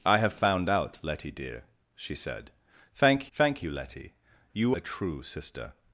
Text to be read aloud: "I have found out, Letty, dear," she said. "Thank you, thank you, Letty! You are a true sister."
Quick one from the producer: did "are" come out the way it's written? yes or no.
no